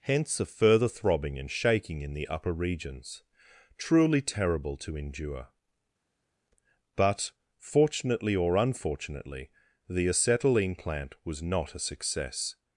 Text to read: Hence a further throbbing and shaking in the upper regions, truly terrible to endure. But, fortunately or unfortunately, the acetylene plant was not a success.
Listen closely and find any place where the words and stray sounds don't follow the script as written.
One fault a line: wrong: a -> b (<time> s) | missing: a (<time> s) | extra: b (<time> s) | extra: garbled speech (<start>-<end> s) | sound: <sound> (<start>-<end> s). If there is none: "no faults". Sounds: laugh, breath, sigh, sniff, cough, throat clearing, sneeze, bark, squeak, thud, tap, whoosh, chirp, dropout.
no faults